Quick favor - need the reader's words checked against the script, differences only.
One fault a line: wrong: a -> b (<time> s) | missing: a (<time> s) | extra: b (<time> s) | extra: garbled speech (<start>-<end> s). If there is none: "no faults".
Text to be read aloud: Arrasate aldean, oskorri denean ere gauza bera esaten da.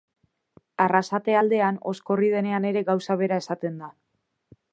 no faults